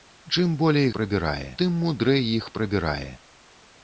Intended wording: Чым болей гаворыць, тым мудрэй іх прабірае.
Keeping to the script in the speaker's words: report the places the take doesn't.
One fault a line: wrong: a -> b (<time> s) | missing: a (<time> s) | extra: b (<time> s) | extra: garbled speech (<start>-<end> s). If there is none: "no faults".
wrong: гаворыць -> прабірае (1.0 s)